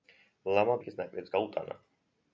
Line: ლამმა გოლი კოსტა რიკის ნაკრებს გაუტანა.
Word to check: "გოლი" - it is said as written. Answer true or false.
false